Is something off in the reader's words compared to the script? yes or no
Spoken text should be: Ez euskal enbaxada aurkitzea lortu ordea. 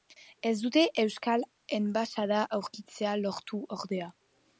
yes